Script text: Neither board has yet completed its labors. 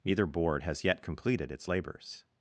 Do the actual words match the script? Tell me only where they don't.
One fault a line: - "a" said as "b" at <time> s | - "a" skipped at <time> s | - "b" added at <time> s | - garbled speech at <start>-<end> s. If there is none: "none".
none